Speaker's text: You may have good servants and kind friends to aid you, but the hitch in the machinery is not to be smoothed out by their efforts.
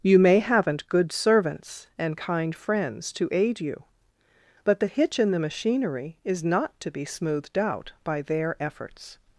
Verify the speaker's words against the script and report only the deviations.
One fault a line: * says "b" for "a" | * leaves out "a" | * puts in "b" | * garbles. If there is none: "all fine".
* says "haven't" for "have"